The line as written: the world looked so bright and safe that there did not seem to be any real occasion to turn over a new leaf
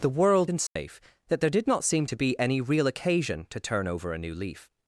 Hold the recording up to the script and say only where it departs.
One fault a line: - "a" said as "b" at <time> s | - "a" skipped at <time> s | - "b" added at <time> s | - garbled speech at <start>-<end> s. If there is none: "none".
- "looked so bright" skipped at 0.5 s